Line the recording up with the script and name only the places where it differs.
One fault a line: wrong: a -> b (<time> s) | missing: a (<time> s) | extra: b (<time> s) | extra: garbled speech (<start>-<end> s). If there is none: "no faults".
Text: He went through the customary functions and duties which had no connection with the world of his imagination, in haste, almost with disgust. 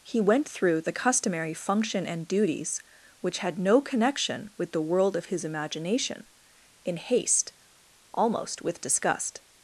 wrong: functions -> function (1.5 s)